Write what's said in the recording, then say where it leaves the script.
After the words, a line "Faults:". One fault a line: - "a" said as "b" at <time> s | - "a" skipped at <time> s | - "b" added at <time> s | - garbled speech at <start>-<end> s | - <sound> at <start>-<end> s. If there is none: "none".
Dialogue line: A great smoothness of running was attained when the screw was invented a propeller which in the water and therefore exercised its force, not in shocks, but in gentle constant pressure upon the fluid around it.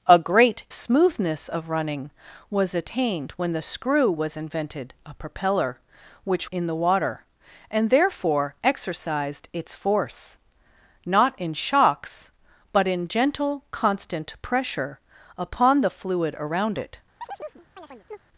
A great smoothness of running was attained when the screw was invented a propeller which in the water and therefore exercised its force, not in shocks, but in gentle constant pressure upon the fluid around it.
Faults:
- chirp at 17.2-18.2 s